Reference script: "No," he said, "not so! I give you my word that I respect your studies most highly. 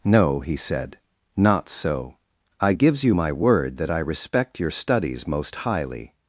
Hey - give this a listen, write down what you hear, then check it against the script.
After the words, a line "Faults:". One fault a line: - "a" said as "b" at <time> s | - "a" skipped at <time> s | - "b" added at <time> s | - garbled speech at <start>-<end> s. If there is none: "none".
"No," he said, "not so! I gives you my word that I respect your studies most highly.
Faults:
- "give" said as "gives" at 2.7 s